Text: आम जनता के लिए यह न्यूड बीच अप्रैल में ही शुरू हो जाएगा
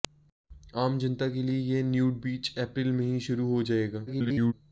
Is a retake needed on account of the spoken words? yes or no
yes